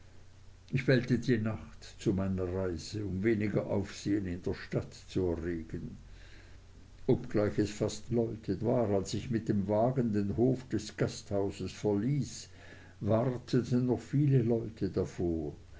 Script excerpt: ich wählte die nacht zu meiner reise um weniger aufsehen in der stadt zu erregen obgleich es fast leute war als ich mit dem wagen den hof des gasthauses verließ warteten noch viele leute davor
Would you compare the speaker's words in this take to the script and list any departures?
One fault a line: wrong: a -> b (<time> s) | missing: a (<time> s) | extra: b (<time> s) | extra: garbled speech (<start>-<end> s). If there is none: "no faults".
no faults